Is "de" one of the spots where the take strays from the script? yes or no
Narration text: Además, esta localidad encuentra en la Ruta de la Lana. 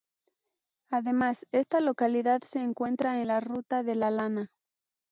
no